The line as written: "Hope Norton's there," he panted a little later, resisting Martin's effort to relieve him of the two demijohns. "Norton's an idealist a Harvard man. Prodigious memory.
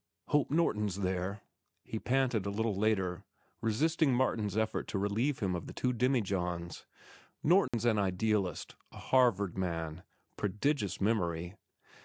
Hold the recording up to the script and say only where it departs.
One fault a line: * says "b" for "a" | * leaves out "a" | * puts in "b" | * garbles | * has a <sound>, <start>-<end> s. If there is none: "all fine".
* has a dropout, 7.7-7.7 s